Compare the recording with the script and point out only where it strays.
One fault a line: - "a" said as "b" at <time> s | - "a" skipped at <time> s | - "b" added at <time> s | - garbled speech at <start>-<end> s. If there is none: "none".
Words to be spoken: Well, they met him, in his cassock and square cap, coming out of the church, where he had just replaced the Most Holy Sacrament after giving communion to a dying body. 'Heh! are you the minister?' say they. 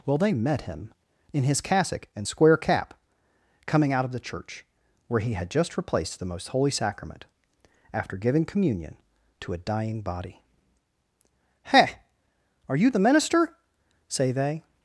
none